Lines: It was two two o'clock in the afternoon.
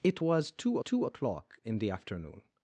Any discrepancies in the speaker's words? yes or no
no